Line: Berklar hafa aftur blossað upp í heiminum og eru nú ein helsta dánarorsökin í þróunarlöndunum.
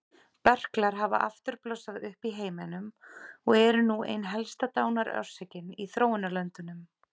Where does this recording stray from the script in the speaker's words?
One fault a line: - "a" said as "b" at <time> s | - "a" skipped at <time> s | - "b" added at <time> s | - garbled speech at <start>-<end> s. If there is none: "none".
none